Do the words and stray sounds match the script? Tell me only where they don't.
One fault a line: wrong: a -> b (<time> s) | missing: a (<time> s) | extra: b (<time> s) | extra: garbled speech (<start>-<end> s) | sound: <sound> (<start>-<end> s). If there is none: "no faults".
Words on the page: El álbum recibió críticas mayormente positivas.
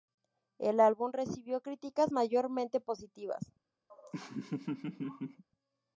sound: laugh (3.9-5.4 s)